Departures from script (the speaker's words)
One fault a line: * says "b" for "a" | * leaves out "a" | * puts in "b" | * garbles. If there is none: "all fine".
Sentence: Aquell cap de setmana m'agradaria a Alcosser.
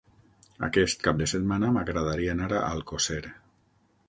* says "Aquest" for "Aquell"
* puts in "anar"